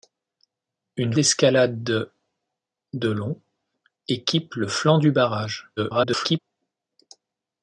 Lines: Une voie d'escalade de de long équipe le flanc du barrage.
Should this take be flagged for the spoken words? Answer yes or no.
yes